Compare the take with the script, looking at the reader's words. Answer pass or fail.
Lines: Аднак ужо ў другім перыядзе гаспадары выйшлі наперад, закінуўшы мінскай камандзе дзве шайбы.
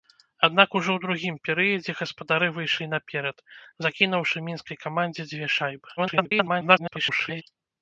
fail